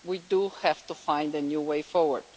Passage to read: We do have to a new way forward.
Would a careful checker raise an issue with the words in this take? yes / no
yes